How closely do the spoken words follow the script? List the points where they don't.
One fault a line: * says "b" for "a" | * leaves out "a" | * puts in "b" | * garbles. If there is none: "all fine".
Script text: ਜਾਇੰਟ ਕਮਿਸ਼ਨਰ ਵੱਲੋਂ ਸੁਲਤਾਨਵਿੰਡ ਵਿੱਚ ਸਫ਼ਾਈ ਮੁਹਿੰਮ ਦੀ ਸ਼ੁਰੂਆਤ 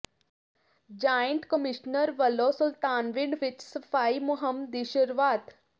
all fine